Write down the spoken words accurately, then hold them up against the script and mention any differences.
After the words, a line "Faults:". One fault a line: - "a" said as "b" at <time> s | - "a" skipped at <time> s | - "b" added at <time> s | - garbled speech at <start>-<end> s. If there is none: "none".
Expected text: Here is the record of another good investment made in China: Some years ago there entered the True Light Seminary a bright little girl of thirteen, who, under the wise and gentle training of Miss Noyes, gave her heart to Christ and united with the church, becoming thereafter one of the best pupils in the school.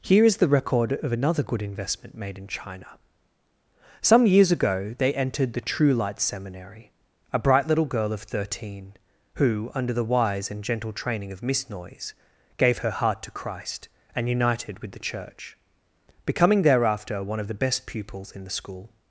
Here is the record of another good investment made in China: Some years ago they entered the True Light Seminary a bright little girl of thirteen, who, under the wise and gentle training of Miss Noyes, gave her heart to Christ and united with the church, becoming thereafter one of the best pupils in the school.
Faults:
- "there" said as "they" at 5.0 s